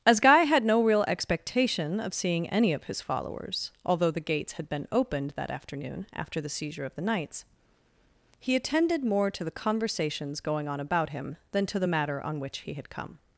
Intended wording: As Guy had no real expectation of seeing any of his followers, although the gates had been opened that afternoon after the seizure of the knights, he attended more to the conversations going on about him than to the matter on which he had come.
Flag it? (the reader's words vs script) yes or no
no